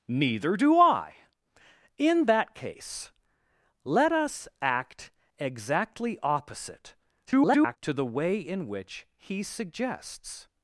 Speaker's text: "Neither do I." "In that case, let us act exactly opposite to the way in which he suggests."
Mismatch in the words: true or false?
true